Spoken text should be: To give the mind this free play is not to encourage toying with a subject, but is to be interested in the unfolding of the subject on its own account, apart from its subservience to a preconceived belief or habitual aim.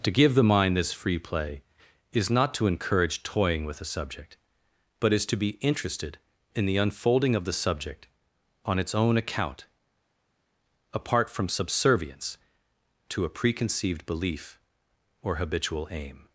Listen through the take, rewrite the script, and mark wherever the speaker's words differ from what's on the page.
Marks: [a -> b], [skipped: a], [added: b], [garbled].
To give the mind this free play is not to encourage toying with a subject, but is to be interested in the unfolding of the subject on its own account, apart from [skipped: its] subservience to a preconceived belief or habitual aim.